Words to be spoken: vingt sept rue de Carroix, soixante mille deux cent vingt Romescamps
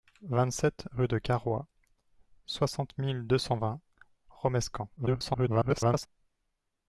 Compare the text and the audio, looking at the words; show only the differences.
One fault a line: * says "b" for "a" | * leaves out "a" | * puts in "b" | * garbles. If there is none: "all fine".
* garbles